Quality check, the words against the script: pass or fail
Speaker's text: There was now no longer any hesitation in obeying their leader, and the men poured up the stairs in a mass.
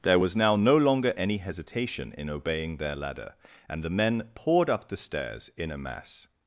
fail